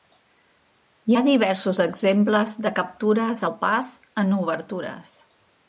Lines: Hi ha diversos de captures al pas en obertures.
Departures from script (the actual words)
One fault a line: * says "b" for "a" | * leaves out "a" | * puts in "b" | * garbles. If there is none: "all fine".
* puts in "exemples"